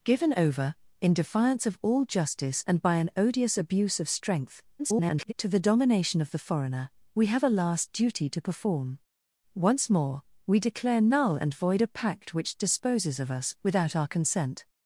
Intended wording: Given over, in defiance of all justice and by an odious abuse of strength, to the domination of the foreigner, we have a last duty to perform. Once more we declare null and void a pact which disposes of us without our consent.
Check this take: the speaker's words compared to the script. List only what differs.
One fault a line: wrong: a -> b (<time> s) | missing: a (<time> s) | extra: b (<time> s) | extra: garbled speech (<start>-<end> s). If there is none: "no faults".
extra: garbled speech (4.8-5.3 s)